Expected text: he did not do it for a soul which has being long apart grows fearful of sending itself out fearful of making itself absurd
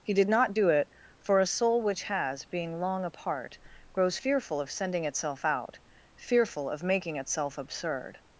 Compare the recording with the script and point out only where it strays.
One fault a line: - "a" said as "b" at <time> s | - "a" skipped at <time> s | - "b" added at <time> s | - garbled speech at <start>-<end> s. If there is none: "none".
none